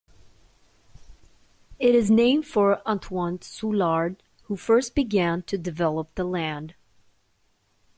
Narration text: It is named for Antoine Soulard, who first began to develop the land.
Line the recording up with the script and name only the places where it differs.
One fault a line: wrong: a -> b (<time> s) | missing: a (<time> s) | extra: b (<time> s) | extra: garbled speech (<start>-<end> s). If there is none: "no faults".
no faults